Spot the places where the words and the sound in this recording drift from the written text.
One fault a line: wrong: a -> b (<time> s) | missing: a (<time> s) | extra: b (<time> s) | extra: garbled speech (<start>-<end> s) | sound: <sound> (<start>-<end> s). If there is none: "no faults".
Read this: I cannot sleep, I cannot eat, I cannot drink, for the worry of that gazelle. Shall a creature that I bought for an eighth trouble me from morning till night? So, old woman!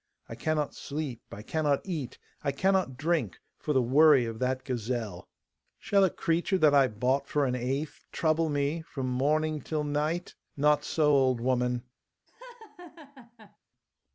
extra: Not (10.6 s)
sound: laugh (12.3-13.6 s)